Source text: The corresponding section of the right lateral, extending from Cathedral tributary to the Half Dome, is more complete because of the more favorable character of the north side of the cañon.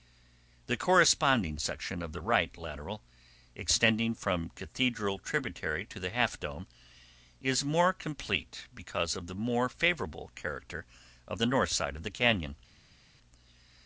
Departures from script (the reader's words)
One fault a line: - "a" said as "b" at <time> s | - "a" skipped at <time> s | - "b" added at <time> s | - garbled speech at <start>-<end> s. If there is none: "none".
none